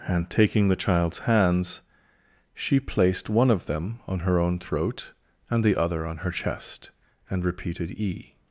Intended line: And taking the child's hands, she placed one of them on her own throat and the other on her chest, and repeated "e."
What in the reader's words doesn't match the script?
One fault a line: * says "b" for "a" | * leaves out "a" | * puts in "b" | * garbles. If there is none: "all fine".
all fine